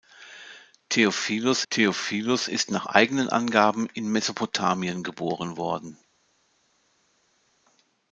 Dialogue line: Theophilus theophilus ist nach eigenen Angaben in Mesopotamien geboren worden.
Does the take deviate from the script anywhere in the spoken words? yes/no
no